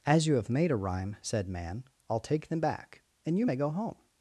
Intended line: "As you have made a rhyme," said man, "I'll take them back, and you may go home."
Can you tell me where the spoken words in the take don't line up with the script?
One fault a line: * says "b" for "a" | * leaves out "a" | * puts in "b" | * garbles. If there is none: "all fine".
all fine